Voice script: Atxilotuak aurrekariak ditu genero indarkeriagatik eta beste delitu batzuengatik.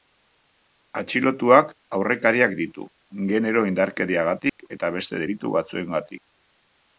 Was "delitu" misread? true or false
false